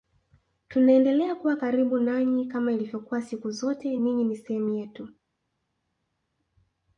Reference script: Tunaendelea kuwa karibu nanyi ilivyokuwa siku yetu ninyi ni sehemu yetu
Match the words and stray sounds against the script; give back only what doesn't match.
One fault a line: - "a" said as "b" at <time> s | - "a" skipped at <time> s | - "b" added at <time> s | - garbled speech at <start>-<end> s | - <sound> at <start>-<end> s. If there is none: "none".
- "kama" added at 2.5 s
- "yetu" said as "zote" at 3.5 s